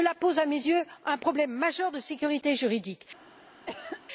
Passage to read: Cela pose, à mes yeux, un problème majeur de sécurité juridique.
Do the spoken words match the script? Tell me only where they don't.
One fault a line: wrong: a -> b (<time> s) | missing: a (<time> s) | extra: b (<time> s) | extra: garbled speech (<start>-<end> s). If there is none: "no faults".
no faults